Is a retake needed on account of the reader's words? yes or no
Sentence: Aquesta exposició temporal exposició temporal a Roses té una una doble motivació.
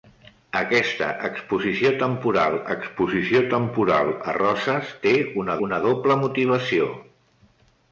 no